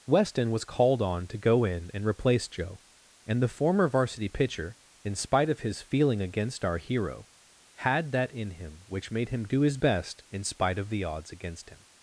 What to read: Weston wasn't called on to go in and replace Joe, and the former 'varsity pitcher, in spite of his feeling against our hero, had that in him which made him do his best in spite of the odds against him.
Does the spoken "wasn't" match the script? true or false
false